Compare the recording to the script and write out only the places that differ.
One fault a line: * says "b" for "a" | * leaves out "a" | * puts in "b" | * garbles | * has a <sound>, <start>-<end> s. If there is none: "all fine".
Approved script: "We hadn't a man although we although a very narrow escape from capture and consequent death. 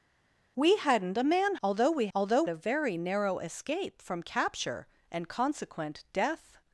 all fine